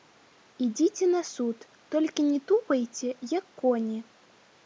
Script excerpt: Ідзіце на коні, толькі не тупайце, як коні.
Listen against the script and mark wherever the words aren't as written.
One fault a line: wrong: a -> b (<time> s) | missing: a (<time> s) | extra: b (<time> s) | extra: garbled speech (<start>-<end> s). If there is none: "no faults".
wrong: коні -> суд (1.3 s)